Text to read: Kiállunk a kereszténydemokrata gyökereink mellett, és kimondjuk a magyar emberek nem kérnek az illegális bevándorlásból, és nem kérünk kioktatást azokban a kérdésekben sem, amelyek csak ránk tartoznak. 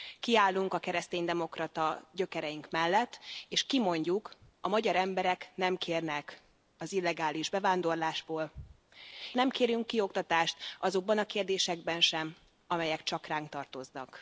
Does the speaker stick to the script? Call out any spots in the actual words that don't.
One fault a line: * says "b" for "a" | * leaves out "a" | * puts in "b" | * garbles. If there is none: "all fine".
* leaves out "és"